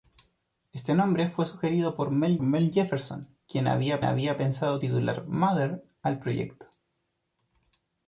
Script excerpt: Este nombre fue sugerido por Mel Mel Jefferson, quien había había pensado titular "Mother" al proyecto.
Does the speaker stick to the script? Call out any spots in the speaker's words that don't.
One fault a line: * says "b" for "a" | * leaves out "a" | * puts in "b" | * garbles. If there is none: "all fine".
all fine